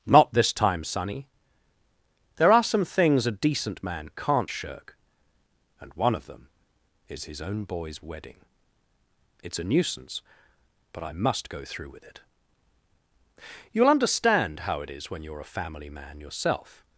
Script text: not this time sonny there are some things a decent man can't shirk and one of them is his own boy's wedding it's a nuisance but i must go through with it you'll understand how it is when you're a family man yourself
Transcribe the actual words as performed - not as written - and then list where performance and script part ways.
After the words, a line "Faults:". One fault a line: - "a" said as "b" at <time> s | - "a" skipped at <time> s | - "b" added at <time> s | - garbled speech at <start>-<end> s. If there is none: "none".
not this time sonny there are some things a decent man can't shirk and one of them is his own boy's wedding it's a nuisance but i must go through with it you'll understand how it is when you're a family man yourself
Faults:
none